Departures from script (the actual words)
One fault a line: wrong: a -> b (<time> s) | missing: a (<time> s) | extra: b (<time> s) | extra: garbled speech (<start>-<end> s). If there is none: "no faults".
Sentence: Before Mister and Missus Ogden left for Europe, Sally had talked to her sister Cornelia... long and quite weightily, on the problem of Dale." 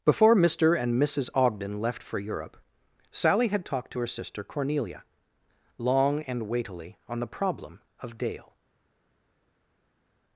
missing: quite (6.5 s)